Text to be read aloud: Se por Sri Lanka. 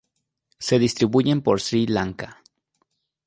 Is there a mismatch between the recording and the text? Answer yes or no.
yes